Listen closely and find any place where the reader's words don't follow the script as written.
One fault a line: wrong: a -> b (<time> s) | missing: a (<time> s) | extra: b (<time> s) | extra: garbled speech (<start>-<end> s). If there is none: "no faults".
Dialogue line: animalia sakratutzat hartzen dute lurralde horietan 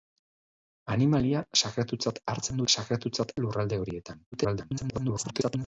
wrong: dute -> sakratutzat (2.7 s)
extra: garbled speech (4.3-5.7 s)